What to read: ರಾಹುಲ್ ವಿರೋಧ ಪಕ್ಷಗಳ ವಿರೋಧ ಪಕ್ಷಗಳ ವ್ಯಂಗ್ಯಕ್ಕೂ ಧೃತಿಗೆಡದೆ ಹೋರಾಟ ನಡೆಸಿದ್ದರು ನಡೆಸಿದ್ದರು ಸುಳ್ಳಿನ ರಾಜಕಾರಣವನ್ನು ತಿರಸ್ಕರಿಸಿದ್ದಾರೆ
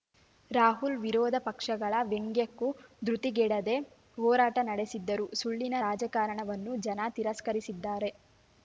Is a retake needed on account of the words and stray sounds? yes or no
yes